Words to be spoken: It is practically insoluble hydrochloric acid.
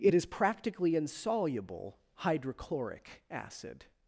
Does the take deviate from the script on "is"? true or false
false